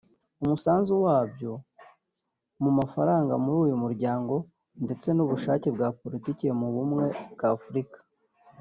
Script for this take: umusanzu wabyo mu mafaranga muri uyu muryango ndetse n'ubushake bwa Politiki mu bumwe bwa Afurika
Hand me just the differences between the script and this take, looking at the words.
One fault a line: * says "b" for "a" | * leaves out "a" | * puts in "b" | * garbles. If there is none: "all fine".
all fine